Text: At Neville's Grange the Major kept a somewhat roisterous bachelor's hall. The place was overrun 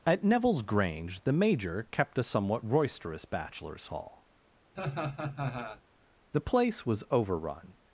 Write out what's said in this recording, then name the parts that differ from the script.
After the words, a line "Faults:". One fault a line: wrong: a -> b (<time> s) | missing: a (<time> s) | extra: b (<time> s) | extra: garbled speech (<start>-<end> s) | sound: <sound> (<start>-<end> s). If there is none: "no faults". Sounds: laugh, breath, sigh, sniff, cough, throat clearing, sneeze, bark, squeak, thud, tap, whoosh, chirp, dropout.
At Neville's Grange the Major kept a somewhat roisterous bachelor's hall. The place was overrun
Faults:
sound: laugh (4.8-5.8 s)